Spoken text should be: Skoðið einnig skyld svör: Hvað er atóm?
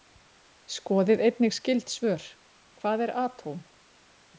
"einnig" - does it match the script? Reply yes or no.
yes